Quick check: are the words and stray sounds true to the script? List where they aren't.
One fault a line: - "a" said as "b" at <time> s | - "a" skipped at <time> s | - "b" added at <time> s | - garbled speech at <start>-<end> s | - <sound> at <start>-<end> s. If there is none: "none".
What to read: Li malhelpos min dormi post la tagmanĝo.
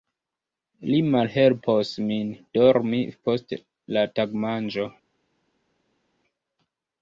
none